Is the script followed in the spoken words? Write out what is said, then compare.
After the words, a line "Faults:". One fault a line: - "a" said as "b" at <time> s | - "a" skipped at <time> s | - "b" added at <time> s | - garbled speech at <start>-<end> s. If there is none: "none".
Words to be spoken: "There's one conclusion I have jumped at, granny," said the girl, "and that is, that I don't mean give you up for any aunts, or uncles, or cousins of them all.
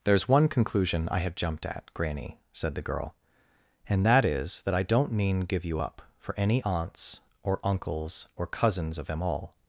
"There's one conclusion I have jumped at, granny," said the girl, "and that is, that I don't mean give you up for any aunts, or uncles, or cousins of them all.
Faults:
none